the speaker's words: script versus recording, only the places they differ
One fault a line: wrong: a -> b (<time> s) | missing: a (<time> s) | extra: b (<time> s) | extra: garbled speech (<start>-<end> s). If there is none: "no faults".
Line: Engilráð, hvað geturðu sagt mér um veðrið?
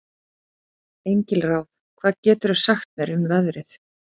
no faults